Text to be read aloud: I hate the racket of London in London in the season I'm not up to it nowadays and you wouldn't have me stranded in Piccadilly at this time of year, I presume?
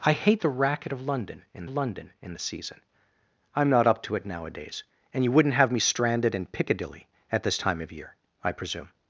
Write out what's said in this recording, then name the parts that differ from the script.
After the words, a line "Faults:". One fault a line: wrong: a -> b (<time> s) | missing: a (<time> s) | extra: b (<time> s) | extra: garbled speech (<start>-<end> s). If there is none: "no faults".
I hate the racket of London in London in the season I'm not up to it nowadays and you wouldn't have me stranded in Piccadilly at this time of year, I presume?
Faults:
no faults